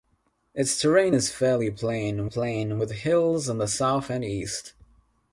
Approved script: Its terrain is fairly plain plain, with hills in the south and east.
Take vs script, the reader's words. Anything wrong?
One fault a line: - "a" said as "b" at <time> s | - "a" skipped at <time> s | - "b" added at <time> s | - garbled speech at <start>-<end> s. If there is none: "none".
none